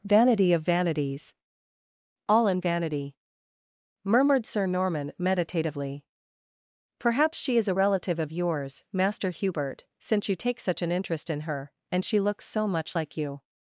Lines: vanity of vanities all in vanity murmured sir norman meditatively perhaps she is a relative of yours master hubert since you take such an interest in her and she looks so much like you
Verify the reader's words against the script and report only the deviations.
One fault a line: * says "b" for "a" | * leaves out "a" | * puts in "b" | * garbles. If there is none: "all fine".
all fine